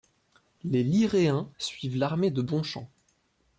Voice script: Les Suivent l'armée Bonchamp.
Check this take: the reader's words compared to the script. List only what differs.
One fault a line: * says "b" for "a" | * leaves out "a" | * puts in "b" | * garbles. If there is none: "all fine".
* puts in "Liréens"
* puts in "de"